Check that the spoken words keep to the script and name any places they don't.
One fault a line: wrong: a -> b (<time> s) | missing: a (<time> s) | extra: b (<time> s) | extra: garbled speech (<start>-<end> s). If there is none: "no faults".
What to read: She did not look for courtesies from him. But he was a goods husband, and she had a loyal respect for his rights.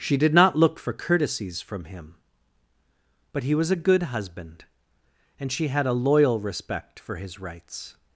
wrong: goods -> good (3.8 s)